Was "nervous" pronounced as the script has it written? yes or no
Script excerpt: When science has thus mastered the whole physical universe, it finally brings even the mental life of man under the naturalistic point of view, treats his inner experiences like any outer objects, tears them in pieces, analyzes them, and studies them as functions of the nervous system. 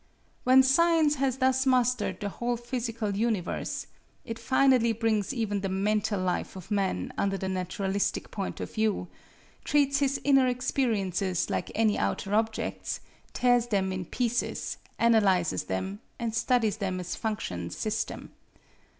no